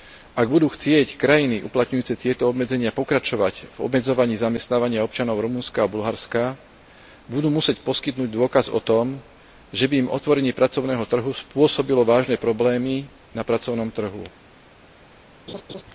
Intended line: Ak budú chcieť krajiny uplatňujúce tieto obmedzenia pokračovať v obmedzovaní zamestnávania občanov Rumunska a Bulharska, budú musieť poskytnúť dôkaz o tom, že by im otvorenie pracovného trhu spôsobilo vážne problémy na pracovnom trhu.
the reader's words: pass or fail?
pass